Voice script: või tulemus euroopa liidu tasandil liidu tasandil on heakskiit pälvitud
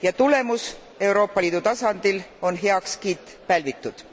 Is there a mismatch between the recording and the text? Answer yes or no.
yes